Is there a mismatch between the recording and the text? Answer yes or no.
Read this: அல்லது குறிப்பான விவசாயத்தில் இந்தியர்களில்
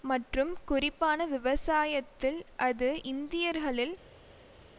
yes